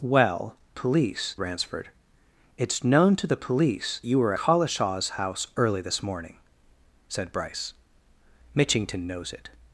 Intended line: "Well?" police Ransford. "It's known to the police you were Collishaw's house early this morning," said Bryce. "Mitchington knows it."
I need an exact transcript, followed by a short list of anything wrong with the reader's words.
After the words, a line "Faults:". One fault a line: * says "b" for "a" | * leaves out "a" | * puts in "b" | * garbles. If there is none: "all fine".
"Well?" police Ransford. "It's known to the police you were Collishaw's house early this morning," said Bryce. "Mitchington knows it."
Faults:
all fine